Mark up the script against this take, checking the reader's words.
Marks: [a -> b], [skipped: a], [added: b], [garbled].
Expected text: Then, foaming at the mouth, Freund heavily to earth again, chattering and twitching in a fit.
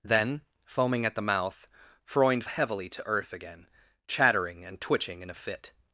Then, foaming at the mouth, Freund heavily to earth again, chattering and twitching in a fit.